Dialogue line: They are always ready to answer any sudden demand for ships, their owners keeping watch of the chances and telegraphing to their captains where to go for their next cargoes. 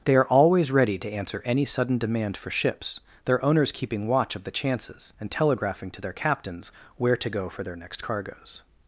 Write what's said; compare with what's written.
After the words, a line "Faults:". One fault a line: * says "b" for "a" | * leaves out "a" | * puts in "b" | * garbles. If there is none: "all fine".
They are always ready to answer any sudden demand for ships, their owners keeping watch of the chances and telegraphing to their captains where to go for their next cargoes.
Faults:
all fine